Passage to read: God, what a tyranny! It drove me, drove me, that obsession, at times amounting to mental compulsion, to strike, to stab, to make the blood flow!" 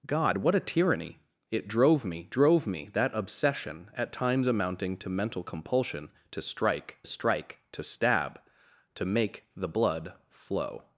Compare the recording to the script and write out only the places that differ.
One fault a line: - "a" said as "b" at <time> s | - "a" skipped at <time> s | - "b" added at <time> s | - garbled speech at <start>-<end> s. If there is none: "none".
- "strike" added at 7.0 s